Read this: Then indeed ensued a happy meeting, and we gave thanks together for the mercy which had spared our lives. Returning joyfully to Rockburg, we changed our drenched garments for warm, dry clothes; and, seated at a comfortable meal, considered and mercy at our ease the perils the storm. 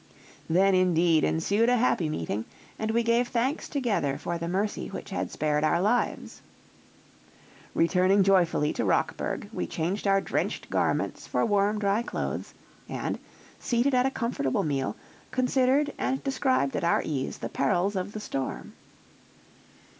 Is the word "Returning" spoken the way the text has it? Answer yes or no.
yes